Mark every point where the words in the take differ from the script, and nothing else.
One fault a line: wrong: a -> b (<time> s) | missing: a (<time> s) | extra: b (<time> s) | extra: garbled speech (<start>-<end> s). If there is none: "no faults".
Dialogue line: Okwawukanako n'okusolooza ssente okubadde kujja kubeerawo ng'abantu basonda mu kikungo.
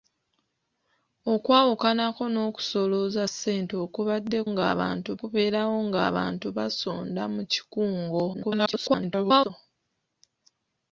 wrong: kujja -> ng'abantu (4.5 s)
extra: garbled speech (8.3-9.5 s)